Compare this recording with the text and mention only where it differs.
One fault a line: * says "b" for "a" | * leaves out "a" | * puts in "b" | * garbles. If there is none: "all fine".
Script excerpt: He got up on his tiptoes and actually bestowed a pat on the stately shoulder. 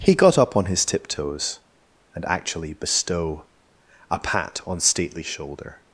* says "bestow" for "bestowed"
* leaves out "the"